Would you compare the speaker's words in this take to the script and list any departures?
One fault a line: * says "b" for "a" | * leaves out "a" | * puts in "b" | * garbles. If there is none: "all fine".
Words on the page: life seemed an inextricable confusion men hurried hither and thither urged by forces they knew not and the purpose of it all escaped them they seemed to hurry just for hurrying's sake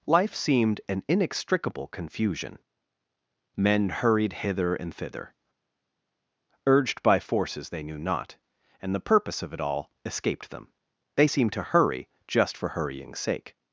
all fine